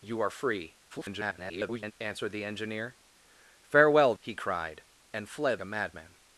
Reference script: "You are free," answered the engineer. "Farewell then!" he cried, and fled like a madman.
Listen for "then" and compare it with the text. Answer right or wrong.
wrong